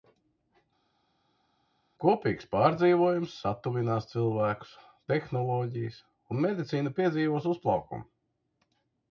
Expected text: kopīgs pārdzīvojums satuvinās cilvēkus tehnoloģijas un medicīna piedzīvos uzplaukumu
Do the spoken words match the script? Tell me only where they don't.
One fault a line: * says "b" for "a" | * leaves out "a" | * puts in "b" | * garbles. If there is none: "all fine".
all fine